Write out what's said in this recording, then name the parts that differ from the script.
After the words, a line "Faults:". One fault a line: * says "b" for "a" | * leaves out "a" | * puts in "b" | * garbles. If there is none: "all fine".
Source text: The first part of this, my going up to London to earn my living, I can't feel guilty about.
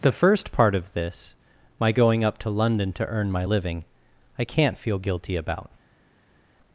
The first part of this, my going up to London to earn my living, I can't feel guilty about.
Faults:
all fine